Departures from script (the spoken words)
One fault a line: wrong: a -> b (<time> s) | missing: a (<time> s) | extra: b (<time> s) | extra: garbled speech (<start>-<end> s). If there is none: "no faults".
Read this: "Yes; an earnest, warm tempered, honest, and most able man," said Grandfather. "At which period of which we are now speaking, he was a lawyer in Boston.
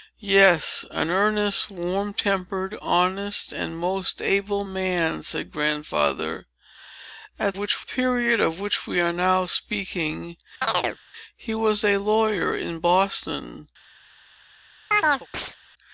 no faults